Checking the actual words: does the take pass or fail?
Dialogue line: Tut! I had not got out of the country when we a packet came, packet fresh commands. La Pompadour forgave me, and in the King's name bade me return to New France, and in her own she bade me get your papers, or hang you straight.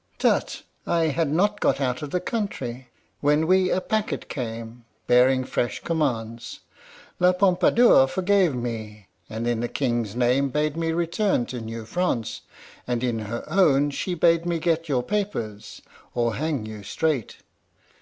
fail